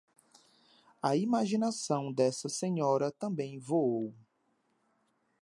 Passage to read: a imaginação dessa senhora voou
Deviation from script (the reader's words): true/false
true